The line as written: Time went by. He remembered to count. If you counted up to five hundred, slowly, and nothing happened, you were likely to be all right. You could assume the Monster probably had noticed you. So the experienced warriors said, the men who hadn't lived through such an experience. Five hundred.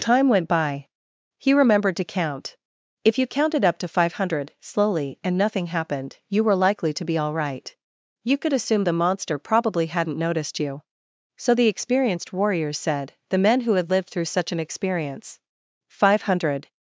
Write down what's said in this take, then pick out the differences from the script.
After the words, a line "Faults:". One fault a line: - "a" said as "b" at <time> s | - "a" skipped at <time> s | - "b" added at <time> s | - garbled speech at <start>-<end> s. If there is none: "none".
Time went by. He remembered to count. If you counted up to five hundred, slowly, and nothing happened, you were likely to be all right. You could assume the Monster probably hadn't noticed you. So the experienced warriors said, the men who had lived through such an experience. Five hundred.
Faults:
- "had" said as "hadn't" at 9.8 s
- "hadn't" said as "had" at 13.7 s